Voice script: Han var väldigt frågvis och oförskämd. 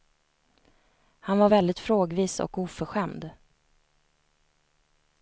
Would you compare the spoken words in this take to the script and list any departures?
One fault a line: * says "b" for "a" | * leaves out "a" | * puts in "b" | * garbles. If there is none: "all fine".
all fine